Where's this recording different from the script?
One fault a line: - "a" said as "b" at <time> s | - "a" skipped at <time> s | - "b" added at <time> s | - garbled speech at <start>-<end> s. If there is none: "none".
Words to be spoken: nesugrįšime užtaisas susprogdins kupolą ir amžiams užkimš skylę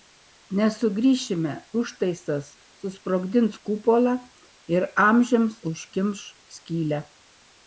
none